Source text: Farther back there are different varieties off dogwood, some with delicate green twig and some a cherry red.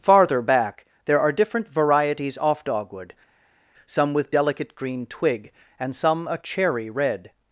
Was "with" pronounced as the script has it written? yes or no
yes